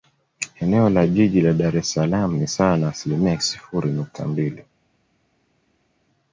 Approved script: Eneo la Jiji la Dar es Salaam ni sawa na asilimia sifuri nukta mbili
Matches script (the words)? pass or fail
pass